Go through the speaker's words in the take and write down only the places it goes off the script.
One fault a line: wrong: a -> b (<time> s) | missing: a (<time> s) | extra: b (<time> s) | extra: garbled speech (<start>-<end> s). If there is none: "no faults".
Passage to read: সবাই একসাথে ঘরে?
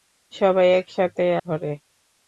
no faults